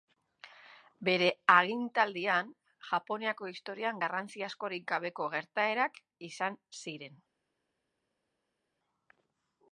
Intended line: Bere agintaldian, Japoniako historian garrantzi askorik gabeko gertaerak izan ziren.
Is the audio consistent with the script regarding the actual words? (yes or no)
yes